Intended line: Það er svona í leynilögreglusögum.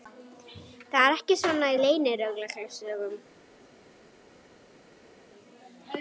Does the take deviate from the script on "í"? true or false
false